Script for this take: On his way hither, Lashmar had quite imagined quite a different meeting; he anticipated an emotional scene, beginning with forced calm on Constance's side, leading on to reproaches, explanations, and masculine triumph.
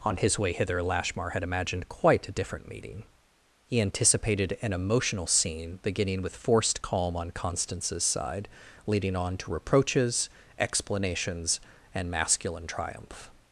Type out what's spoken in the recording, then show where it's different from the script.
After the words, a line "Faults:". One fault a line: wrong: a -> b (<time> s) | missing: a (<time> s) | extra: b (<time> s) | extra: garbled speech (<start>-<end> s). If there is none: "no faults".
On his way hither, Lashmar had imagined quite a different meeting; he anticipated an emotional scene, beginning with forced calm on Constance's side, leading on to reproaches, explanations, and masculine triumph.
Faults:
missing: quite (1.4 s)